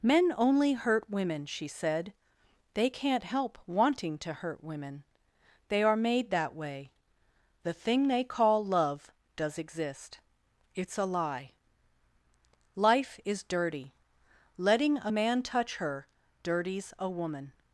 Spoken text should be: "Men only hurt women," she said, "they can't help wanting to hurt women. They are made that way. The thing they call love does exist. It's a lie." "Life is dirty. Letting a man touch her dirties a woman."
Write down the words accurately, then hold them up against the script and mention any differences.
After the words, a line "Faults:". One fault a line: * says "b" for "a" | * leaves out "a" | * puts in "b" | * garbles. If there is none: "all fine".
"Men only hurt women," she said, "they can't help wanting to hurt women. They are made that way. The thing they call love does exist. It's a lie." "Life is dirty. Letting a man touch her dirties a woman."
Faults:
all fine